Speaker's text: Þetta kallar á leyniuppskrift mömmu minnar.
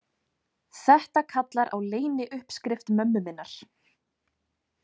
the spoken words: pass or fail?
pass